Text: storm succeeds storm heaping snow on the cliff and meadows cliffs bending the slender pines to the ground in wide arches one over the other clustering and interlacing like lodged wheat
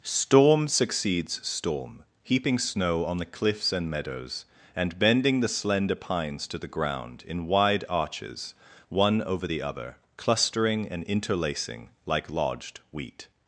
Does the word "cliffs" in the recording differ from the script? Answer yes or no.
yes